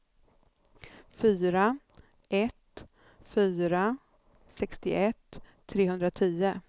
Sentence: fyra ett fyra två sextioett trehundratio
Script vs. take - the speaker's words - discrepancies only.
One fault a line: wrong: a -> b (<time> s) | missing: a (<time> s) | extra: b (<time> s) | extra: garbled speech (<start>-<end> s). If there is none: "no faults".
missing: två (4.0 s)